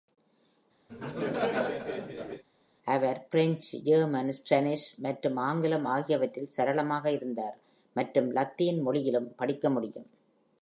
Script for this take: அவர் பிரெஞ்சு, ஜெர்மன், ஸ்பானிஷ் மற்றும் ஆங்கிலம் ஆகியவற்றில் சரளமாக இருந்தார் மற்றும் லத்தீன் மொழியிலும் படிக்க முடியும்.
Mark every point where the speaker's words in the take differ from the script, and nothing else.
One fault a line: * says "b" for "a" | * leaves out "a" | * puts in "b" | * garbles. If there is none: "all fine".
all fine